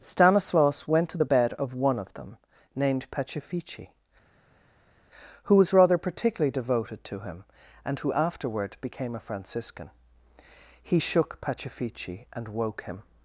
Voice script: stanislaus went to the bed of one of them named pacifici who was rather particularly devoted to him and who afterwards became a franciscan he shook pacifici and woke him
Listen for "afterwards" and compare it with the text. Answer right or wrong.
wrong